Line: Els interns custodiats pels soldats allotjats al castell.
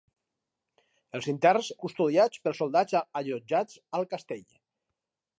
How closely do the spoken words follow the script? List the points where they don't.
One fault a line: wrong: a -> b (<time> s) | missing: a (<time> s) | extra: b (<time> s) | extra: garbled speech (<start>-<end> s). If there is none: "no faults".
no faults